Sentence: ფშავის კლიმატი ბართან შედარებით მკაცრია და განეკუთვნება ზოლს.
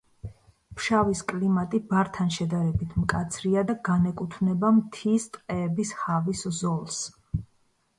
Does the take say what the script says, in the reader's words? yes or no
no